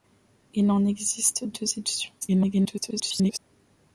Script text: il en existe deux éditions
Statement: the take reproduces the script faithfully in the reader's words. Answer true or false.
false